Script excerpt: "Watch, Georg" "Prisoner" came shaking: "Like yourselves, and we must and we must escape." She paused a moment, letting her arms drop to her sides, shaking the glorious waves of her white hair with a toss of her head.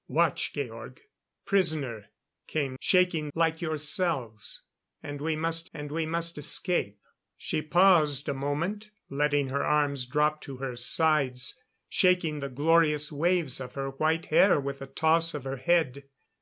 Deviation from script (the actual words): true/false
false